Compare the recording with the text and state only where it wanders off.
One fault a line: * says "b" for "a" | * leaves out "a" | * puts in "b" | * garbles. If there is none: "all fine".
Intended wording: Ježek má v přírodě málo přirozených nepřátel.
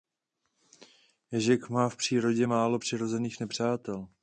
all fine